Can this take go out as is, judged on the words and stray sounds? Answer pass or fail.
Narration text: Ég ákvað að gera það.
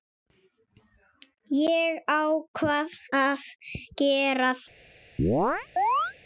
fail